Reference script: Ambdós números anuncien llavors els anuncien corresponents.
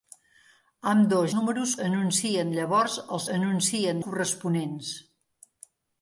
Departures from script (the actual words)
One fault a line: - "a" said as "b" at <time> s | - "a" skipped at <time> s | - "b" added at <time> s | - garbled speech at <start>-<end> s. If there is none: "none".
none